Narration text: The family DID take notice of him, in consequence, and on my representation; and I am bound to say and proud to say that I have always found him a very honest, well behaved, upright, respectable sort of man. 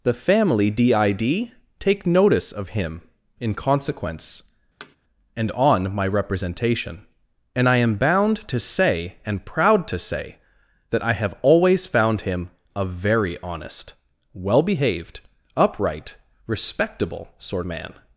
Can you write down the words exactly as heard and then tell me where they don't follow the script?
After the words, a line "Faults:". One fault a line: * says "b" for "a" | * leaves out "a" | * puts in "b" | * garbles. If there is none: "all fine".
The family DID take notice of him, in consequence, and on my representation; and I am bound to say and proud to say that I have always found him a very honest, well behaved, upright, respectable sort man.
Faults:
* leaves out "of"